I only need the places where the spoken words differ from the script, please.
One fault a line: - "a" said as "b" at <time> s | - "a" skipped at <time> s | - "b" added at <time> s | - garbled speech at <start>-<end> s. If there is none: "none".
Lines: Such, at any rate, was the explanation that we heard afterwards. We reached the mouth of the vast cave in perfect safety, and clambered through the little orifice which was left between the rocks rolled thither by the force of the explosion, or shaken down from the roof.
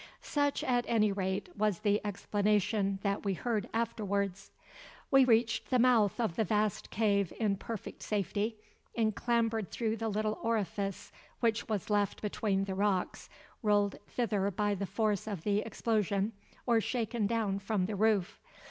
none